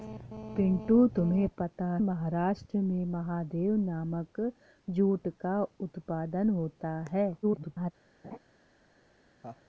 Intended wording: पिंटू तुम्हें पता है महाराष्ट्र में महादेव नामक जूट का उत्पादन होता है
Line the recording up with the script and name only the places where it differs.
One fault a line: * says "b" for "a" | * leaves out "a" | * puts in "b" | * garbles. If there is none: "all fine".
* leaves out "है"
* garbles